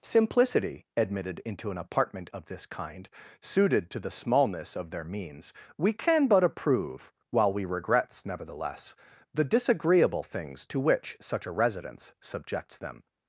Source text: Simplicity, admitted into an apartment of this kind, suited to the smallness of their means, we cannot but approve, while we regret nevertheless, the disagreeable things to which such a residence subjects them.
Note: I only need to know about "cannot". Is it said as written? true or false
false